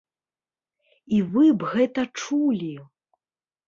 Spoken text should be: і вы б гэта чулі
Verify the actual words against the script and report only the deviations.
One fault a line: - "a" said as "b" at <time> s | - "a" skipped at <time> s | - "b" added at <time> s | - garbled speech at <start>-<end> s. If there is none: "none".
none